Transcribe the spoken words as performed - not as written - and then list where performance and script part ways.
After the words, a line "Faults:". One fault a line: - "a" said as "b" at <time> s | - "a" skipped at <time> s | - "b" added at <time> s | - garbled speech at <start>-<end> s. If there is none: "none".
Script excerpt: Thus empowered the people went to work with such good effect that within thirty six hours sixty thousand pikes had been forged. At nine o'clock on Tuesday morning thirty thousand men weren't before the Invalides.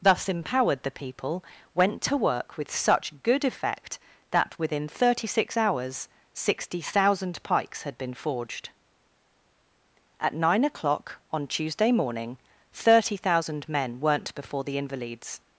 Thus empowered the people went to work with such good effect that within thirty six hours sixty thousand pikes had been forged. At nine o'clock on Tuesday morning thirty thousand men weren't before the Invalides.
Faults:
none